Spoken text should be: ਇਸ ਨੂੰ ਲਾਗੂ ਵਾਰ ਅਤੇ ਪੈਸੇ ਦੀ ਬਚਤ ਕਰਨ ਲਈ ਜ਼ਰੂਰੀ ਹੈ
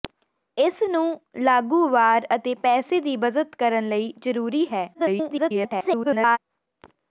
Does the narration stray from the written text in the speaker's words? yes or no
yes